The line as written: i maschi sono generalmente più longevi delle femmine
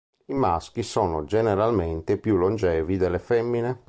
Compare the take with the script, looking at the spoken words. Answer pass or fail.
pass